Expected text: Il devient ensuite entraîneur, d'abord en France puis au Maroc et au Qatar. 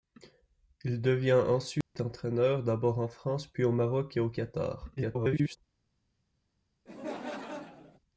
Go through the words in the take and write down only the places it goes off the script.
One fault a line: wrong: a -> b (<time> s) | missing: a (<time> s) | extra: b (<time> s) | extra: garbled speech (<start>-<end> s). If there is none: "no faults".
extra: garbled speech (5.0-5.6 s)